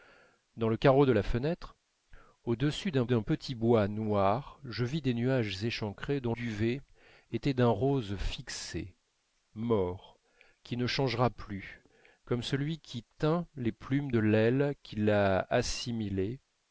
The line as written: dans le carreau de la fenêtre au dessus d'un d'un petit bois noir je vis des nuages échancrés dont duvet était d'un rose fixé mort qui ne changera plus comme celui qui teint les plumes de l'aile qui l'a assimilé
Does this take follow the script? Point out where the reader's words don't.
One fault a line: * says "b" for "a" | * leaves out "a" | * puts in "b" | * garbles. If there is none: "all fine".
all fine